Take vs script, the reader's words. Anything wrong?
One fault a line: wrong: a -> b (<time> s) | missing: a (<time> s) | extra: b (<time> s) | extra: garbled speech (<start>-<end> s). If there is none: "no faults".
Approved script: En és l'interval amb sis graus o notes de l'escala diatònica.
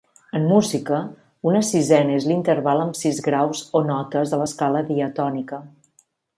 extra: música una sisena (0.5 s)